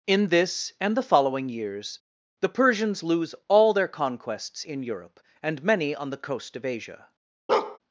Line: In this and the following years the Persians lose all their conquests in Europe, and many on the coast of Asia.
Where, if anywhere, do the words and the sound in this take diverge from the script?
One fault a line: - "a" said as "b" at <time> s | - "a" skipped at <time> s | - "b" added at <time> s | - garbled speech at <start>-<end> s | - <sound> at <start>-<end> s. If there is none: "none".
- bark at 7.5-7.8 s